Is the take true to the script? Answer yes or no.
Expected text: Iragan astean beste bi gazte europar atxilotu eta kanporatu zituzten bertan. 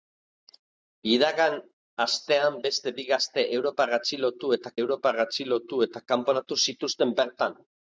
no